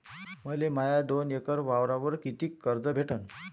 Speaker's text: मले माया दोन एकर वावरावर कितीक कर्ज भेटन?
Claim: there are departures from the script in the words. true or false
false